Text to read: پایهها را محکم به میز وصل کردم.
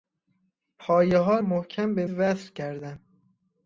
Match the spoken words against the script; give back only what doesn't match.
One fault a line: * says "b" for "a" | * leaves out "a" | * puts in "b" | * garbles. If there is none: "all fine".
* leaves out "را"
* leaves out "میز"